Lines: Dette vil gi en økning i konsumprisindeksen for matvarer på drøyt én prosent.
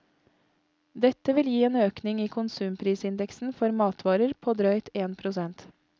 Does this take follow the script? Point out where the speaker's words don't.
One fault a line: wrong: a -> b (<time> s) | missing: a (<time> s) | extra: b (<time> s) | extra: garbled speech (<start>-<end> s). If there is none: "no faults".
no faults